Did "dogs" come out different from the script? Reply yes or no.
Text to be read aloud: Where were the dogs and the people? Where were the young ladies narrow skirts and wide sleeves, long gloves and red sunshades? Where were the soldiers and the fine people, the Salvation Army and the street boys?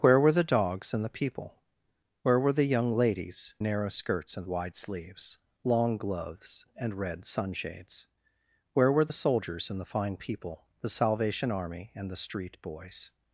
no